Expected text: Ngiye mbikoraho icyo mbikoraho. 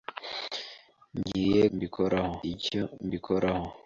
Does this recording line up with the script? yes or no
yes